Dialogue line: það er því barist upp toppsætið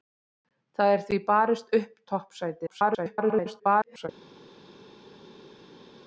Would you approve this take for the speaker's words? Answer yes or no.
no